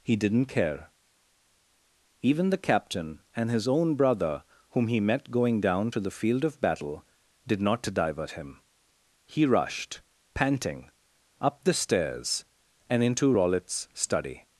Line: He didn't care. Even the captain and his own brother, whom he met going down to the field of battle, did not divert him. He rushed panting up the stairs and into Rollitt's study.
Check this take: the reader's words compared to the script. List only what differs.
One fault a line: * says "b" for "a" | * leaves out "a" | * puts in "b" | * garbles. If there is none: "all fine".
all fine